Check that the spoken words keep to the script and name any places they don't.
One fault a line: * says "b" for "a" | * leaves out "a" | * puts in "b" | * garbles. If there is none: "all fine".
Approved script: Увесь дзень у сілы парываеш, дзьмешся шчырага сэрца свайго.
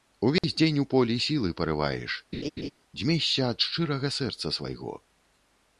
* puts in "полі"
* puts in "ад"